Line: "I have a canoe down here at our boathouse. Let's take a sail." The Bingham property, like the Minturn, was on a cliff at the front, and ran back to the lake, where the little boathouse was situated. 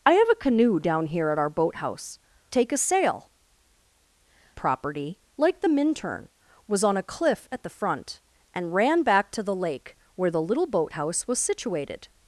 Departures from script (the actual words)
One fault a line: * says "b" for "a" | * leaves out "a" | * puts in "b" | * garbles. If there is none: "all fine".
* leaves out "Let's"
* leaves out "The Bingham"